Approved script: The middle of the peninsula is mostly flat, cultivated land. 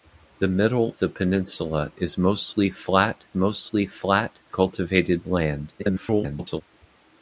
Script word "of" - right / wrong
wrong